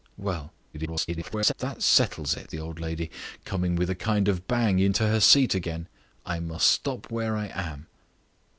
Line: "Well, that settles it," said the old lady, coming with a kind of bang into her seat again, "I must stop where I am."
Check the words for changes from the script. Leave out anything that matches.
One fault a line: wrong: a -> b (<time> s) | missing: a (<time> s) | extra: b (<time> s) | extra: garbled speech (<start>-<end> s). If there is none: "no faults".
extra: garbled speech (0.7-1.5 s)
missing: said (2.5 s)